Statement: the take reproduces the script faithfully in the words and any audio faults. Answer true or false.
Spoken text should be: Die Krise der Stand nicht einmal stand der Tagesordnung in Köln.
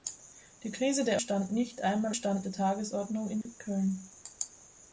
false